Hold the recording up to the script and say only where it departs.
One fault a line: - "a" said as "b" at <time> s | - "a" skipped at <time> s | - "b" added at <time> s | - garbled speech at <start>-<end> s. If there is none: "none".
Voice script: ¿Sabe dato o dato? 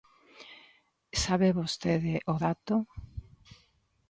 - "dato" said as "vostede" at 1.6 s